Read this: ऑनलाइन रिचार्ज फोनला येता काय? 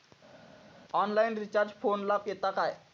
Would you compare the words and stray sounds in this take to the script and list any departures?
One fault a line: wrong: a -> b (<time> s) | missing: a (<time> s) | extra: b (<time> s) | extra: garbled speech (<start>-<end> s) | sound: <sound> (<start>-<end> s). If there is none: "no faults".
no faults